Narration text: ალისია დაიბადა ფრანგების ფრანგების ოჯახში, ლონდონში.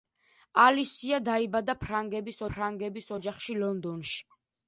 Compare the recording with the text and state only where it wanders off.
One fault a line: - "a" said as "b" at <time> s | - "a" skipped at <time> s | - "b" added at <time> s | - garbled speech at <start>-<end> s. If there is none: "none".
none